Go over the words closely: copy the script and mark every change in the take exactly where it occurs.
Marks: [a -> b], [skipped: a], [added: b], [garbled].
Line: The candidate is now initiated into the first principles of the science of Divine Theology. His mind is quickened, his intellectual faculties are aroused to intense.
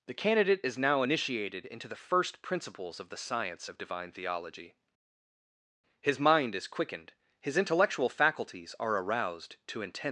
The candidate is now initiated into the first principles of the science of Divine Theology. His mind is quickened, his intellectual faculties are aroused to intense.